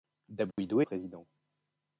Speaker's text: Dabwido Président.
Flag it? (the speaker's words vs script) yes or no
no